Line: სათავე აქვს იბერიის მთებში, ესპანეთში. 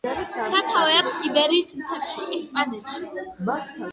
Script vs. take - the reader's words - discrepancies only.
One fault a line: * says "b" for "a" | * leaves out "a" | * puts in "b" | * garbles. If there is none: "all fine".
all fine